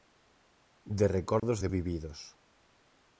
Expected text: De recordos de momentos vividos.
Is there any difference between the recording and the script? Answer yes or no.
yes